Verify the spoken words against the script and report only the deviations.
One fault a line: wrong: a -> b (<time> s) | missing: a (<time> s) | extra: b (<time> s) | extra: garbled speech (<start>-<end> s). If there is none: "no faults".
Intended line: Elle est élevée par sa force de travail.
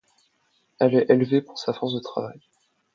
wrong: par -> pour (1.4 s)